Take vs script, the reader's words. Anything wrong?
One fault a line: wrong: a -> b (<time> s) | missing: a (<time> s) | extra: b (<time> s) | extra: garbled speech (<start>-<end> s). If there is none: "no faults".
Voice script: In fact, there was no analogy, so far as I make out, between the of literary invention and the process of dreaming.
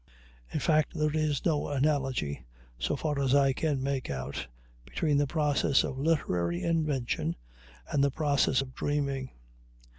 wrong: was -> is (1.1 s)
extra: can (3.5 s)
extra: process (5.3 s)